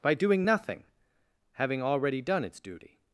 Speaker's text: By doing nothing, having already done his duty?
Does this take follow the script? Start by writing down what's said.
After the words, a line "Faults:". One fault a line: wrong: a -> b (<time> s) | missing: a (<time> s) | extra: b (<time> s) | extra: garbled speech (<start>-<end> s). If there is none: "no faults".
By doing nothing, having already done its duty?
Faults:
wrong: his -> its (2.5 s)